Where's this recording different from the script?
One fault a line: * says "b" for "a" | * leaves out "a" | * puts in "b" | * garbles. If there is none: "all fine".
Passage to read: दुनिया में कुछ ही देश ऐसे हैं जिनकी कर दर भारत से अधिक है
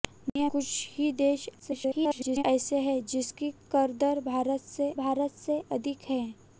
* leaves out "में"
* garbles
* puts in "भारत से"